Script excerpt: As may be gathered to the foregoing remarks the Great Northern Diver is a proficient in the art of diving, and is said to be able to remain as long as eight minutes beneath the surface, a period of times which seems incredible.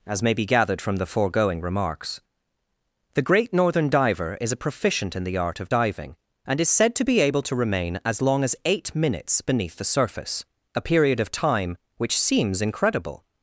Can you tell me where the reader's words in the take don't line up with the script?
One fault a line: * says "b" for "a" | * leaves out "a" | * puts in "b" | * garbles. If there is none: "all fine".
* says "from" for "to"
* says "time" for "times"